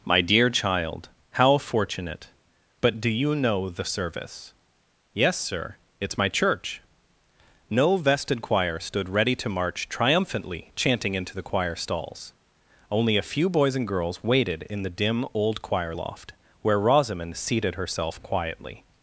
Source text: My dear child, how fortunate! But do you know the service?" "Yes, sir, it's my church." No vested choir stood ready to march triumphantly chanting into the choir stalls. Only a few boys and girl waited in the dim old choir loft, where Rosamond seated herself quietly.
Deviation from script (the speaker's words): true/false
true